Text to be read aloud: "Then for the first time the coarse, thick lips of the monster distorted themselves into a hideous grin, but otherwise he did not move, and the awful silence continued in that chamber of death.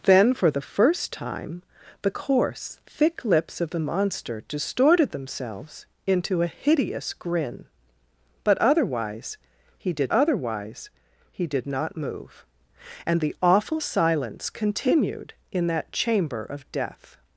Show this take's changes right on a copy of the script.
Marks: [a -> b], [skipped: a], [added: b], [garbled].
"Then for the first time the coarse, thick lips of the monster distorted themselves into a hideous grin, but otherwise he did [added: otherwise he did] not move, and the awful silence continued in that chamber of death.